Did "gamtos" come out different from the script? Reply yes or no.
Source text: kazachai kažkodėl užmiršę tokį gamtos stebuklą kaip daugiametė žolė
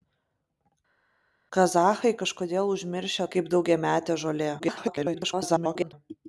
yes